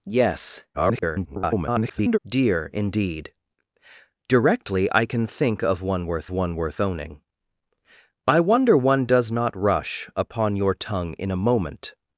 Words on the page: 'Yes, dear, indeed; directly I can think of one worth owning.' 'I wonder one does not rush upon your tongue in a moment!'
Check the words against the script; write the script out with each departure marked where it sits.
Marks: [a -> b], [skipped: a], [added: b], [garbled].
'Yes, [garbled] dear, indeed; directly I can think of one worth [added: one worth] owning.' 'I wonder one does not rush upon your tongue in a moment!'